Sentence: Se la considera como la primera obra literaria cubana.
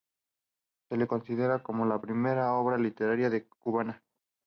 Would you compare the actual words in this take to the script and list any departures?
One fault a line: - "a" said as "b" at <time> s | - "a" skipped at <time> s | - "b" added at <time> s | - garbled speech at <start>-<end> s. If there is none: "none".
none